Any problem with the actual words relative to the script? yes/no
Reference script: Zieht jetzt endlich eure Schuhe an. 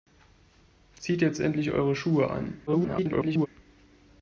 yes